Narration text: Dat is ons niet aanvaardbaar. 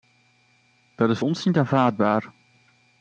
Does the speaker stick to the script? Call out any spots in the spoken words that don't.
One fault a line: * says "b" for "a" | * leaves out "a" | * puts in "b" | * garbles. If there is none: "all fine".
all fine